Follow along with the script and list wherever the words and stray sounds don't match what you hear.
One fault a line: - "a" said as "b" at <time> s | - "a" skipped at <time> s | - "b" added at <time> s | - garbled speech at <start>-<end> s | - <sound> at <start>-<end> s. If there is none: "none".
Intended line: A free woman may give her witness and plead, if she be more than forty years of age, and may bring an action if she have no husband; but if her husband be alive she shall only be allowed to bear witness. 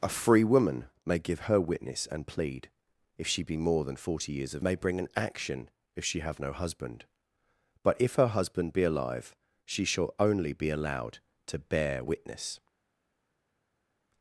- "age and" skipped at 4.7 s